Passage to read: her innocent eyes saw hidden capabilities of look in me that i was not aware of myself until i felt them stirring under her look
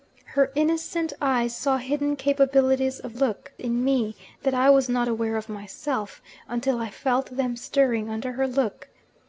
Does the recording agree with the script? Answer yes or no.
yes